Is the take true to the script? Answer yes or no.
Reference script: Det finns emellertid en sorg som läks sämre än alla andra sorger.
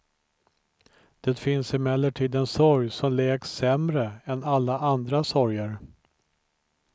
yes